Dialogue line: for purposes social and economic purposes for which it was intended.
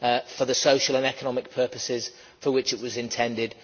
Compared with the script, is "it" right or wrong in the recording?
right